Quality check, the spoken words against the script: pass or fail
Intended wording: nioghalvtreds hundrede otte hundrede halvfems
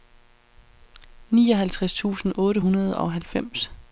fail